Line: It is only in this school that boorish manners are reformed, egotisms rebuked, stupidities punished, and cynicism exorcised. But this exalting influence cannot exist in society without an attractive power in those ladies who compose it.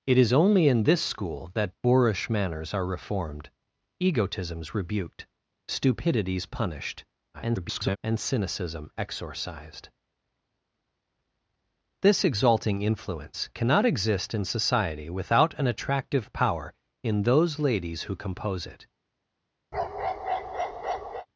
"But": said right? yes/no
no